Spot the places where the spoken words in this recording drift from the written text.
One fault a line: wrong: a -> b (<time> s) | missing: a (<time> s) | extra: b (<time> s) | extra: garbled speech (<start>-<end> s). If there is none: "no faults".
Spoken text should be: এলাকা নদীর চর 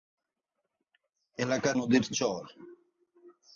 no faults